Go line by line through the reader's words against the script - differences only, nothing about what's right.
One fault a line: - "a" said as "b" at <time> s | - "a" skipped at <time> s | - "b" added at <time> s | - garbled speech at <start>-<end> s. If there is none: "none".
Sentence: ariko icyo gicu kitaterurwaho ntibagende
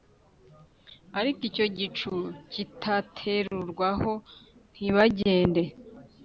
none